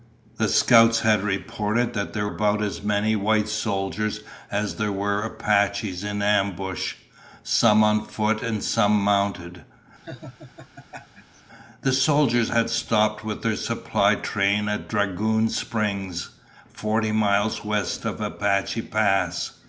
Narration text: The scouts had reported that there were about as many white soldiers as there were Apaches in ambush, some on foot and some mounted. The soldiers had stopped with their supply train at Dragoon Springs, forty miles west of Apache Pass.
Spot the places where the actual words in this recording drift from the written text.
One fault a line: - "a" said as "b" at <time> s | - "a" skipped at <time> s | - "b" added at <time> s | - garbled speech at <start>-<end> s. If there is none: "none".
- "were" skipped at 2.3 s